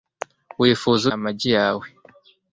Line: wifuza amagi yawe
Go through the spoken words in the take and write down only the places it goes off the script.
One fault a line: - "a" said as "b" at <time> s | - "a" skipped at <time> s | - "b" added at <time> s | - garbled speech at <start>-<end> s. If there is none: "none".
none